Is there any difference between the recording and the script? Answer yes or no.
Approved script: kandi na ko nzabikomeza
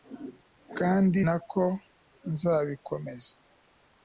no